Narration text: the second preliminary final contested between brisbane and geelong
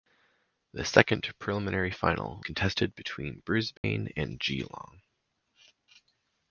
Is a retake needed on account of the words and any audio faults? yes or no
yes